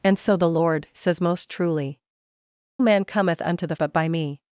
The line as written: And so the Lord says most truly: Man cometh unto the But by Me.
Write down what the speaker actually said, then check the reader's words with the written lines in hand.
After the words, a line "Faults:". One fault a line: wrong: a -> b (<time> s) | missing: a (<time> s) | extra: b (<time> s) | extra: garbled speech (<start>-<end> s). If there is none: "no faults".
And so the Lord says most truly: Man cometh unto the But by Me.
Faults:
no faults